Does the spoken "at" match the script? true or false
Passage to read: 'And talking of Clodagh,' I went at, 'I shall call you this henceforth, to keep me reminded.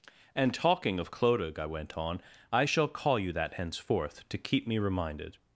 false